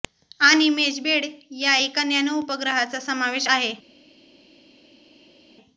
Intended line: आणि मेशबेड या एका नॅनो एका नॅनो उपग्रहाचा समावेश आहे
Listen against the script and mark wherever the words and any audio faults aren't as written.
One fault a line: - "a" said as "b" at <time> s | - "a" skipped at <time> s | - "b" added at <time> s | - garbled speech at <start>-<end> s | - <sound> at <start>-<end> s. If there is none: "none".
- "एका नॅनो" skipped at 2.4 s